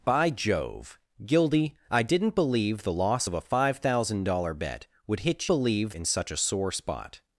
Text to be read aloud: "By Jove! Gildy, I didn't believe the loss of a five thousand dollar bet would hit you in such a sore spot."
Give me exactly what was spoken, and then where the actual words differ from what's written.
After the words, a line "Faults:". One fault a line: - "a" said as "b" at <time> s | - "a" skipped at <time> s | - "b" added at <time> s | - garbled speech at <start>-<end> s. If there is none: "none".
"By Jove! Gildy, I didn't believe the loss of a five thousand dollar bet would hit believe in such a sore spot."
Faults:
- "you" said as "believe" at 5.4 s